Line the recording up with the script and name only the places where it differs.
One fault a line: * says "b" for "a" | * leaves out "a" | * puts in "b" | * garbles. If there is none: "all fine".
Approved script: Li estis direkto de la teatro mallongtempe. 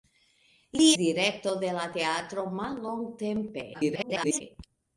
* leaves out "estis"
* garbles